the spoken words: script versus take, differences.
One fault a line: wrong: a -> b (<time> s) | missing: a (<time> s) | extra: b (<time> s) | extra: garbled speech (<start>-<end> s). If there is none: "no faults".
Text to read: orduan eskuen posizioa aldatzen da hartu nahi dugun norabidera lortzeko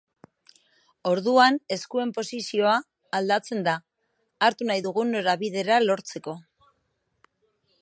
no faults